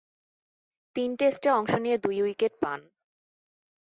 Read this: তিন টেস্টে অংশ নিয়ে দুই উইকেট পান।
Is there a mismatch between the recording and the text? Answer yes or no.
no